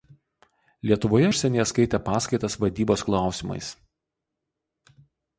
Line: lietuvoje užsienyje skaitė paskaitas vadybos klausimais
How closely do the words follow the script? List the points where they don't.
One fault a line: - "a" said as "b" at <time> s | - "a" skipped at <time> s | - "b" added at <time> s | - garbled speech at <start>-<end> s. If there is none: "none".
none